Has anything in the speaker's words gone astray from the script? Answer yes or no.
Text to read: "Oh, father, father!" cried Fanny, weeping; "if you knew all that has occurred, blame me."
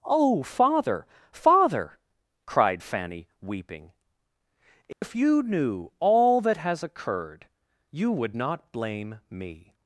yes